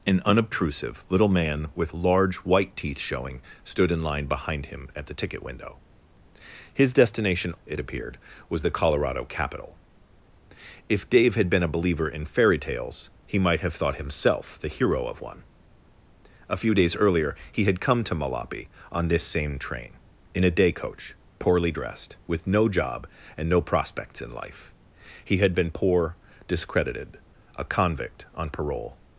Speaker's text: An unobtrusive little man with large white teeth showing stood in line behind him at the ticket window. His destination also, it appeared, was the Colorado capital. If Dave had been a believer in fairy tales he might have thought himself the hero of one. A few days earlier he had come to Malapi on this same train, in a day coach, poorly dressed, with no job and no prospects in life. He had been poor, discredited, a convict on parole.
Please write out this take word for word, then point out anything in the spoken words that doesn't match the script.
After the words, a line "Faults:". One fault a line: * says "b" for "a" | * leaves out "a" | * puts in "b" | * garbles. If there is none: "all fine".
An unobtrusive little man with large white teeth showing stood in line behind him at the ticket window. His destination it appeared, was the Colorado capital. If Dave had been a believer in fairy tales he might have thought himself the hero of one. A few days earlier he had come to Malapi on this same train, in a day coach, poorly dressed, with no job and no prospects in life. He had been poor, discredited, a convict on parole.
Faults:
* leaves out "also"